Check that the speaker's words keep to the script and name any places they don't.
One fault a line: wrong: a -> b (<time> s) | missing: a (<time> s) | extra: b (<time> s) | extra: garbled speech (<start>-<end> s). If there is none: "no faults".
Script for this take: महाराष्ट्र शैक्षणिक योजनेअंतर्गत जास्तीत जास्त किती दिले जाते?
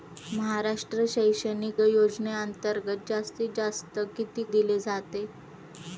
no faults